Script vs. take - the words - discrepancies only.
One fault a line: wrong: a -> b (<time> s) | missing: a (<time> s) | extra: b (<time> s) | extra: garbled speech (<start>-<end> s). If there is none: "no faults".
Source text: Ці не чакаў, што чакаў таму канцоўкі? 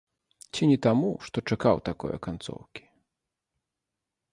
wrong: чакаў -> таму (0.8 s)
wrong: таму -> такое (1.9 s)